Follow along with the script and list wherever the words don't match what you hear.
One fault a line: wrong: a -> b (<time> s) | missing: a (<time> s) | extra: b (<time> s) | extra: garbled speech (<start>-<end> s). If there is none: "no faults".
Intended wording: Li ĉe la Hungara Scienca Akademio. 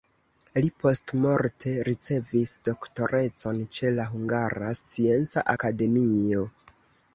extra: postmorte ricevis doktorecon (0.8 s)